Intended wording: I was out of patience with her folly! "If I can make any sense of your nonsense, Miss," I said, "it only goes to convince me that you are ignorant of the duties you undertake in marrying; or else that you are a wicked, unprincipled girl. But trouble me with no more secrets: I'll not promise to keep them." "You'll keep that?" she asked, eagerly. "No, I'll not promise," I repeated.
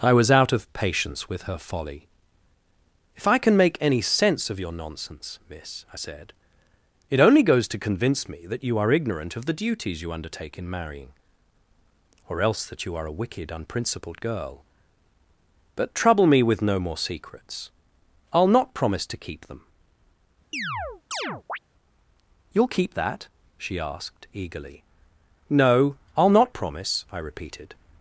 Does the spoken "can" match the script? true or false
true